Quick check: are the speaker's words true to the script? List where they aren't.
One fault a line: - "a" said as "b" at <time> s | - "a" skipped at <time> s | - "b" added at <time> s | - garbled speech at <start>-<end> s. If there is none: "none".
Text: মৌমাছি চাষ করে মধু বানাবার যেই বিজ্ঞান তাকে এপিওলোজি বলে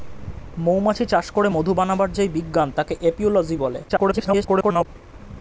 - garbled speech at 3.9-4.9 s